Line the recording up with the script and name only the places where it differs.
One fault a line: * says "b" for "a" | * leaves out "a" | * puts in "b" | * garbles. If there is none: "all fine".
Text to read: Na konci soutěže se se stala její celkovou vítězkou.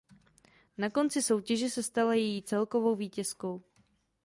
* leaves out "se"